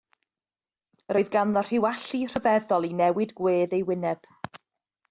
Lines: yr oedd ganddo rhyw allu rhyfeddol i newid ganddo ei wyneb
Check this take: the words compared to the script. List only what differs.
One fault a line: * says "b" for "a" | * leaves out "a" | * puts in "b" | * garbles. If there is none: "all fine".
* says "gwedd" for "ganddo"